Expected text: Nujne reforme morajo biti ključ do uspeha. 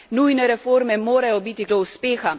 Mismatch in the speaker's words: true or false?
true